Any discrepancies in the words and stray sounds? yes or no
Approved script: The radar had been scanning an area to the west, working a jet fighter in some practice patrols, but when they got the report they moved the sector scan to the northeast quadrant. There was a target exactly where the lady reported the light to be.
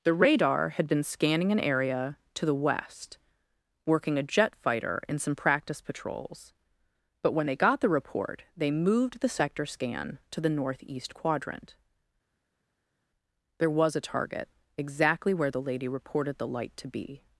no